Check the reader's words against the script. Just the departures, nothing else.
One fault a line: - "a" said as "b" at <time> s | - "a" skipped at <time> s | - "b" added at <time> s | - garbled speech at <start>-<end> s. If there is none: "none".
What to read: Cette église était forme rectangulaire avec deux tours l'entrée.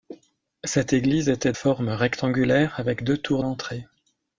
none